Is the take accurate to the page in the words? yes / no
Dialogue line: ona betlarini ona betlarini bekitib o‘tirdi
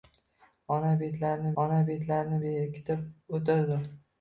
yes